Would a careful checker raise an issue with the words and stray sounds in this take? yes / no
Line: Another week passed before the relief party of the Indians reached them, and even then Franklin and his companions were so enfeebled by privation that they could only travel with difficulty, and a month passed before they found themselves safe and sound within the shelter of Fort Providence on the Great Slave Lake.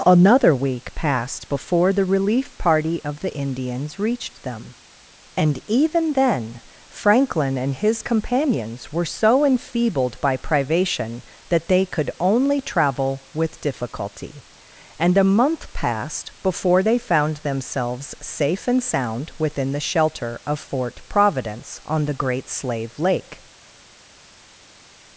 no